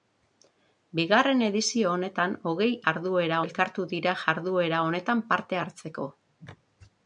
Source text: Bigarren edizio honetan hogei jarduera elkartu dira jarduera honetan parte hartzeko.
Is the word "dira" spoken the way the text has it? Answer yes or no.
yes